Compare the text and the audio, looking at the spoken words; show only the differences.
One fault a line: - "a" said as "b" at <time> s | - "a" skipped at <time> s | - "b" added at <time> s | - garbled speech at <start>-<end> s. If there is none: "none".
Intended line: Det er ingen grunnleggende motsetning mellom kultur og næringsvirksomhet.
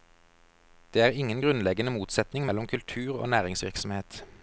none